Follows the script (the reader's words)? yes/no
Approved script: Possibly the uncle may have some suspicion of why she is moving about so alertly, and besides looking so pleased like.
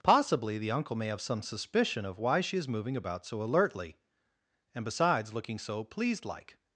yes